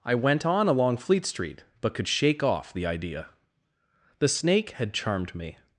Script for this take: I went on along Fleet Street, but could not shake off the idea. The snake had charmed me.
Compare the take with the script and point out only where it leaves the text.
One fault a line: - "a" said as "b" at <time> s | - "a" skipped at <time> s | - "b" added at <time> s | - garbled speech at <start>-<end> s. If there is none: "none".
- "not" skipped at 2.1 s